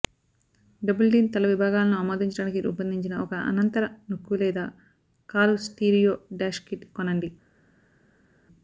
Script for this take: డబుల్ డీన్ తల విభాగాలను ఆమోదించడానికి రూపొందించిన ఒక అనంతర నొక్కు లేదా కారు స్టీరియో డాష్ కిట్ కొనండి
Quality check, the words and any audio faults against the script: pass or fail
pass